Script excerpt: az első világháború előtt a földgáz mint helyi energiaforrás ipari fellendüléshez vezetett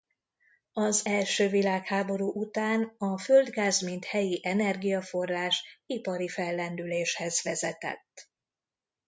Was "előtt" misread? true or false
true